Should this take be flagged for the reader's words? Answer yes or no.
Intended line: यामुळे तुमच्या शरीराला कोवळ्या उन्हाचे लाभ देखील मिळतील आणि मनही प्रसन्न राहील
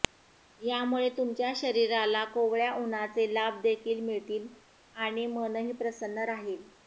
no